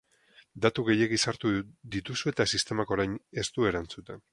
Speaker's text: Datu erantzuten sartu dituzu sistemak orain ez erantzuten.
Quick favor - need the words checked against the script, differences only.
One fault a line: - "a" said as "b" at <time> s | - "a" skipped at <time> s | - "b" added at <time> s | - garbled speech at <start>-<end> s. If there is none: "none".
- "erantzuten" said as "gehiegi" at 0.9 s
- "eta" added at 2.3 s
- "du" added at 3.6 s